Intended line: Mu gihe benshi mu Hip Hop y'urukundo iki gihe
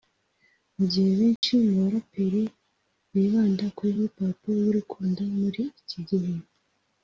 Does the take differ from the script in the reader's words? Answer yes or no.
yes